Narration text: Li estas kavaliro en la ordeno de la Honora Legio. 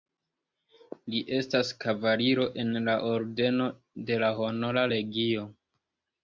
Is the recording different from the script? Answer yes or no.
no